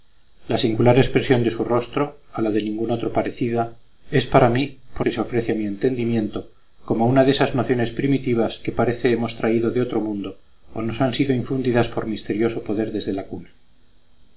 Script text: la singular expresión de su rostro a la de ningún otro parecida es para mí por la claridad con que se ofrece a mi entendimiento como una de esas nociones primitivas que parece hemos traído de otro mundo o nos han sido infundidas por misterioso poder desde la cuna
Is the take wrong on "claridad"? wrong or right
wrong